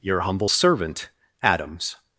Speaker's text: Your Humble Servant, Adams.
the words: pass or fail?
pass